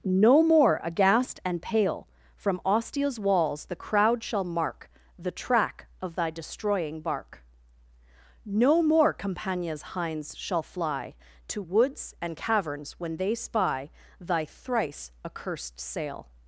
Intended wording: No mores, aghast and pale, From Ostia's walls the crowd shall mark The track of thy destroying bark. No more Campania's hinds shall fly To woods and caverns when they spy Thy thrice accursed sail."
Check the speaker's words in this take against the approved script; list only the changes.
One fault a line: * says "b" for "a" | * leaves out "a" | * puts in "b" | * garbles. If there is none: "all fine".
* says "more" for "mores"